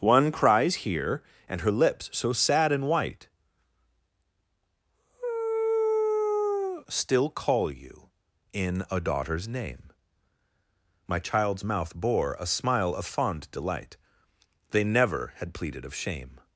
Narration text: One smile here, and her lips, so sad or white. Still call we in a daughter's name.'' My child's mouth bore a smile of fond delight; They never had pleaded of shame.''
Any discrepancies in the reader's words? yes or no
yes